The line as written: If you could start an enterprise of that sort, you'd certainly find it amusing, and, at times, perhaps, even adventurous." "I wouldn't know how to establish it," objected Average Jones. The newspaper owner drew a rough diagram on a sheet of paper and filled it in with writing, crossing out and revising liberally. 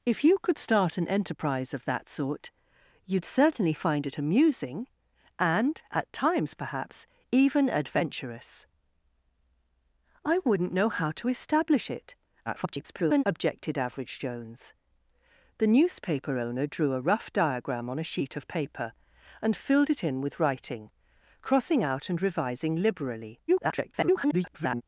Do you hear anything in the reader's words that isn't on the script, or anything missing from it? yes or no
yes